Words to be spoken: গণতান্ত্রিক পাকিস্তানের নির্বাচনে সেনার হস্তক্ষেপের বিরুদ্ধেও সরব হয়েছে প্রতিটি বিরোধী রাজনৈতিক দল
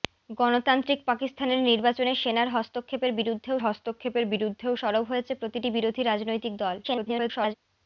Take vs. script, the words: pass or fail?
fail